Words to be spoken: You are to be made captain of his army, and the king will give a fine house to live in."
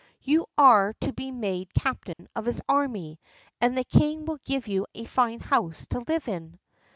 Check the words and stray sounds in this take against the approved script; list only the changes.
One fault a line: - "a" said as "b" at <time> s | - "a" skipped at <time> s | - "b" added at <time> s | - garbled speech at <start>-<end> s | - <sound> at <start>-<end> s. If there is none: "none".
- dropout at 2.1-2.2 s
- "you" added at 4.7 s